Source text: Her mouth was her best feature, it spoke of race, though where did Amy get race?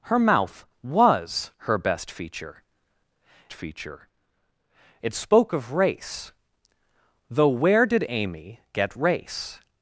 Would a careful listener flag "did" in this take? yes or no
no